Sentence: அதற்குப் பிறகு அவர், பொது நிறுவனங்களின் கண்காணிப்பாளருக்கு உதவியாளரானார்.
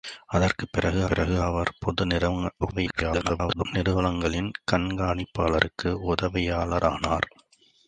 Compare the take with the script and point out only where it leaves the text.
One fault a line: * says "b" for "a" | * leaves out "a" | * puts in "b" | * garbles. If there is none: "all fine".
* puts in "பிறகு"
* garbles